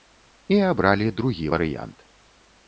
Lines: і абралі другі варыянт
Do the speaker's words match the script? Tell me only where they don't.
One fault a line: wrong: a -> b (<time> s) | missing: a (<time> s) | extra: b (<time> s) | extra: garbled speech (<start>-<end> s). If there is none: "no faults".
no faults